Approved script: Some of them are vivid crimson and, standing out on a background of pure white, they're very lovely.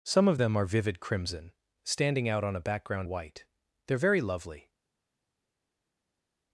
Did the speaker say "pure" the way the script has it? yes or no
no